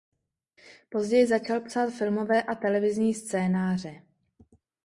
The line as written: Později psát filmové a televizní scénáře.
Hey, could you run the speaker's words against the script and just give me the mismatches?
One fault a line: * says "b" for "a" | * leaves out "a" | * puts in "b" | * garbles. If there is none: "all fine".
* puts in "začal"